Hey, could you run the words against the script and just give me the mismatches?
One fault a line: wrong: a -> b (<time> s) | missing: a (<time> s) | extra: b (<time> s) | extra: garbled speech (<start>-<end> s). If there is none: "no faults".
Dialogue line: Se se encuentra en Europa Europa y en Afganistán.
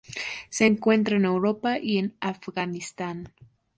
missing: se (0.7 s)
missing: Europa (1.8 s)